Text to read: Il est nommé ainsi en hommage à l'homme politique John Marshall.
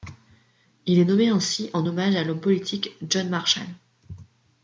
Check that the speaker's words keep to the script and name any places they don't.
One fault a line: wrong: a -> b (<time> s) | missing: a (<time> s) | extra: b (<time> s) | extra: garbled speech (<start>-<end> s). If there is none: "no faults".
no faults